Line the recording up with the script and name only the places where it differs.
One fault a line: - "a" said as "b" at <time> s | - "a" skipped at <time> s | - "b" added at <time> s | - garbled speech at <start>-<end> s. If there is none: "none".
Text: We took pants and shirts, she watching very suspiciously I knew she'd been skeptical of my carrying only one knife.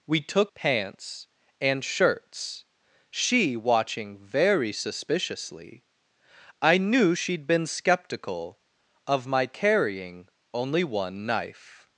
none